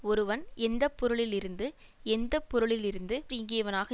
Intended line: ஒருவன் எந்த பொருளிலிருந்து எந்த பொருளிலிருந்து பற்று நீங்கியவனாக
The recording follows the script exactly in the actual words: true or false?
false